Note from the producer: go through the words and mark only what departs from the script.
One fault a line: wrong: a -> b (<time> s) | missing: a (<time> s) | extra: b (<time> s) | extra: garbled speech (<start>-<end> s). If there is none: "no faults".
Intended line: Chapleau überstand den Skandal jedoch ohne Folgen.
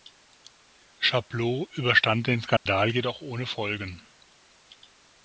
no faults